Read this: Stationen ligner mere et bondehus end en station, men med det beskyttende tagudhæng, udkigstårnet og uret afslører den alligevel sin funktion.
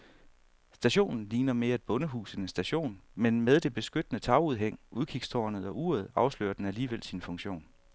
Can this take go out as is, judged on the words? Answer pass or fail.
pass